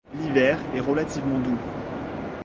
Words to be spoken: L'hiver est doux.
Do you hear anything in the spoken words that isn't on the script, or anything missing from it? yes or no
yes